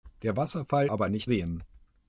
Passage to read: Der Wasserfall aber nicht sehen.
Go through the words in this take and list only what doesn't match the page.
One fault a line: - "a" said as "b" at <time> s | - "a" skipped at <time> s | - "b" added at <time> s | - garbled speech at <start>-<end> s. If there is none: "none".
none